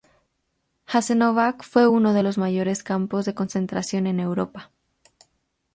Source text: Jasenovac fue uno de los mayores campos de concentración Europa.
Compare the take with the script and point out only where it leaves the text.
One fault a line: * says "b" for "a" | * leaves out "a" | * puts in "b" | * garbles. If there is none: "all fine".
* puts in "en"